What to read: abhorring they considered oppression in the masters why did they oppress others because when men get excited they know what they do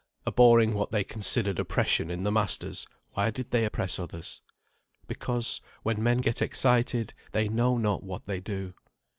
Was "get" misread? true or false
false